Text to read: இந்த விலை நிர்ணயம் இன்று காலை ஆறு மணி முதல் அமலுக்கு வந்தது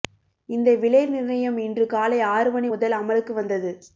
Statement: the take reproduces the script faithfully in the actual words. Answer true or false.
true